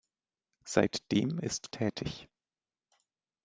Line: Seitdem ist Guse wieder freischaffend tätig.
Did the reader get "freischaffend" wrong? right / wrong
wrong